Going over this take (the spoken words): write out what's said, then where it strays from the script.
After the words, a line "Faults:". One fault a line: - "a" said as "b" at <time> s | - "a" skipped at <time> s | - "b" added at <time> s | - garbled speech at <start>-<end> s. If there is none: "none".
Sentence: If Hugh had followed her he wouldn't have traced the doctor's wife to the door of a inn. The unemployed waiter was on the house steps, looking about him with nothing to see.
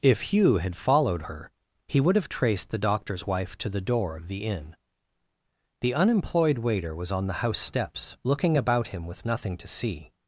If Hugh had followed her he would have traced the doctor's wife to the door of the inn. The unemployed waiter was on the house steps, looking about him with nothing to see.
Faults:
- "wouldn't" said as "would" at 2.0 s
- "a" said as "the" at 4.3 s